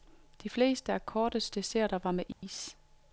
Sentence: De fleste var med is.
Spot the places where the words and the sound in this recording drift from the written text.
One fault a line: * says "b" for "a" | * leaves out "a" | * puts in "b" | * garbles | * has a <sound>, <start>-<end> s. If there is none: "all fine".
* puts in "af kortets desserter"
* has a dropout, 2.3-2.4 s